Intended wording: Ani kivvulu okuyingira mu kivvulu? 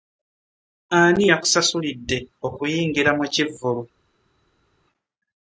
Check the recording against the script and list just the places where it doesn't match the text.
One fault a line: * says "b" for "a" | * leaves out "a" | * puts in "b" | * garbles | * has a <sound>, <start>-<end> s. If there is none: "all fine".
* says "yakusasulidde" for "kivvulu"